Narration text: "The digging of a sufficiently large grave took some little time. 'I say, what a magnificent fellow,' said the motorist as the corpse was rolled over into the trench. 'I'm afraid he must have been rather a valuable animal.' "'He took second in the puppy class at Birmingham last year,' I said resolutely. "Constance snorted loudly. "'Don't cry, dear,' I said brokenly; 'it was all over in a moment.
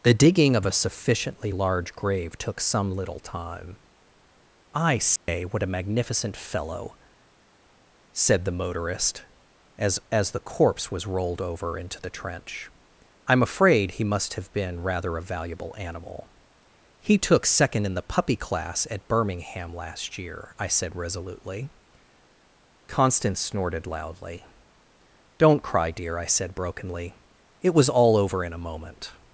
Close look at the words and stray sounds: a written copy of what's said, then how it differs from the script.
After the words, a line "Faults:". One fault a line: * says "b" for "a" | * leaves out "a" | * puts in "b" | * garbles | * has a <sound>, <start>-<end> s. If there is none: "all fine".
"The digging of a sufficiently large grave took some little time. 'I say, what a magnificent fellow,' said the motorist as as the corpse was rolled over into the trench. 'I'm afraid he must have been rather a valuable animal.' "'He took second in the puppy class at Birmingham last year,' I said resolutely. "Constance snorted loudly. "'Don't cry, dear,' I said brokenly; 'it was all over in a moment.
Faults:
* has a dropout, 5.2-5.3 s
* puts in "as"